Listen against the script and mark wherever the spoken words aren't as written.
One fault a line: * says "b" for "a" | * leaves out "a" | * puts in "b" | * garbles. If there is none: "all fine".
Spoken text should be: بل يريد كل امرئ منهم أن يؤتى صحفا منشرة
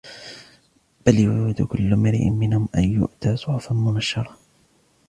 all fine